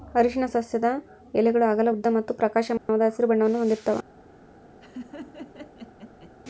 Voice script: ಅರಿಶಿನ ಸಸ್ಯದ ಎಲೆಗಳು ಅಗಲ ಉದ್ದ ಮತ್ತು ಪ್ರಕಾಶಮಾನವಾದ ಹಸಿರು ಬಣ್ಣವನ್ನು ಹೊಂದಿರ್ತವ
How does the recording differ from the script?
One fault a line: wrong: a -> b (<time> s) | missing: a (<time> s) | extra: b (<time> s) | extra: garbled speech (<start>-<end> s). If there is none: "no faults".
no faults